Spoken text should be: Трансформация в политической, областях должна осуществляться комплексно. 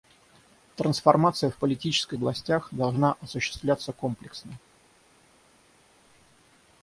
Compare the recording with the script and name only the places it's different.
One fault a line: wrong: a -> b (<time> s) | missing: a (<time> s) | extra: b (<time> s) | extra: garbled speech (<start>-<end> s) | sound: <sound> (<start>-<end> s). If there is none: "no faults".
no faults